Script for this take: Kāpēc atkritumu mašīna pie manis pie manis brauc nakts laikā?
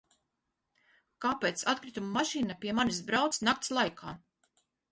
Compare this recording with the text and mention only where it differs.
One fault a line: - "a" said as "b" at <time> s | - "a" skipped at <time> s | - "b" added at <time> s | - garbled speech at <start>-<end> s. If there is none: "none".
- "pie manis" skipped at 3.0 s